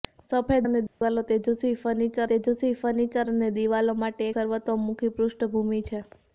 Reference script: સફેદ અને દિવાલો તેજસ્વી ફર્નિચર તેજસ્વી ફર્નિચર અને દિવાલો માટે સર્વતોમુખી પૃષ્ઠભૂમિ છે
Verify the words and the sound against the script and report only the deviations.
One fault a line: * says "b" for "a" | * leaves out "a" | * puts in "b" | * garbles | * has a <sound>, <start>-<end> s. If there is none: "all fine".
* has a dropout, 0.9-1.0 s